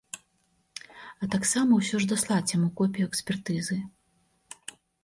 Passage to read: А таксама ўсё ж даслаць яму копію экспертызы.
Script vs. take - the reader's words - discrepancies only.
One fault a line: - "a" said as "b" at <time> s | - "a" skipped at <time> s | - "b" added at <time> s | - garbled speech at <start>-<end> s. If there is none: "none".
none